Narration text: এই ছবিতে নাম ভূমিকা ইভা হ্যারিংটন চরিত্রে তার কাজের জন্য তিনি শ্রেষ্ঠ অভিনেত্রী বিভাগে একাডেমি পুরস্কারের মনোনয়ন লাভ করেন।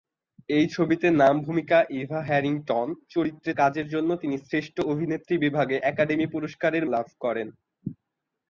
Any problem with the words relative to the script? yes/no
yes